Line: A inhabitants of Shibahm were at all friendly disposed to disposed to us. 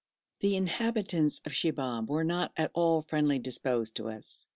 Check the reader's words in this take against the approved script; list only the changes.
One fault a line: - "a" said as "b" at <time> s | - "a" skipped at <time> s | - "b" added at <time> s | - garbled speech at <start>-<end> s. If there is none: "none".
- "A" said as "The" at 0.4 s
- "not" added at 2.2 s
- "disposed to" skipped at 4.1 s